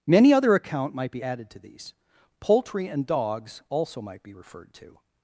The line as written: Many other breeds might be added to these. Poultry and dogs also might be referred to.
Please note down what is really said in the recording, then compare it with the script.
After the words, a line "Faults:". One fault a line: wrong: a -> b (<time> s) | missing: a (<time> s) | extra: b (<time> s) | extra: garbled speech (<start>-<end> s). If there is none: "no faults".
Many other account might be added to these. Poultry and dogs also might be referred to.
Faults:
wrong: breeds -> account (0.6 s)